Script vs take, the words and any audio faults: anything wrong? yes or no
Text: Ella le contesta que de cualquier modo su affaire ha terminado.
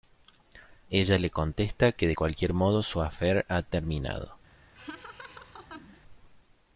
yes